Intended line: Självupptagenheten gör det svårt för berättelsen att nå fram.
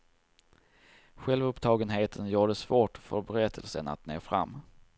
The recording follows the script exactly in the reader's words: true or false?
true